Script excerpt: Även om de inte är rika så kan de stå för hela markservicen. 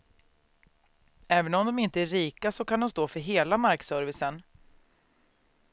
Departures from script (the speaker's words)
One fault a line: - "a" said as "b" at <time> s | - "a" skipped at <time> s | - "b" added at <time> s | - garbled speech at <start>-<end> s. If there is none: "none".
none